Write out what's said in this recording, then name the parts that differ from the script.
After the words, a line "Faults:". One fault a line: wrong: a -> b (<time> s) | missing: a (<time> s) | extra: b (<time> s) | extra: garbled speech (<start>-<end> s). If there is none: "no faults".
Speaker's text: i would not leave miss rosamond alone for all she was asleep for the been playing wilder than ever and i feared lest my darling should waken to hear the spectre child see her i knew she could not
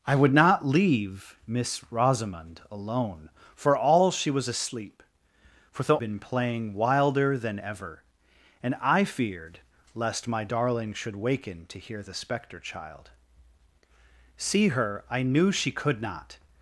i would not leave miss rosamond alone for all she was asleep for the been playing wilder than ever and i feared lest my darling should waken to hear the spectre child see her i knew she could not
Faults:
no faults